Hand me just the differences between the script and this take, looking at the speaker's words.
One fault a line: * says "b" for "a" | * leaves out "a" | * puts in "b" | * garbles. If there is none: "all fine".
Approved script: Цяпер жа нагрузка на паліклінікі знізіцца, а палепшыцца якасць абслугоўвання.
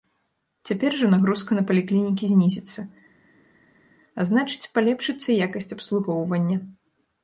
* puts in "значыць"